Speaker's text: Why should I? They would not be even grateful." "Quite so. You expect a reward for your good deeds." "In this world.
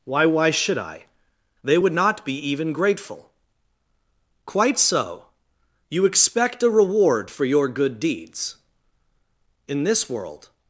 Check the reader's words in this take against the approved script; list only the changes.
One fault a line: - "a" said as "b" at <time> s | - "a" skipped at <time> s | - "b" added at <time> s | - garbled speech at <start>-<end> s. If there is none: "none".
- "why" added at 0.2 s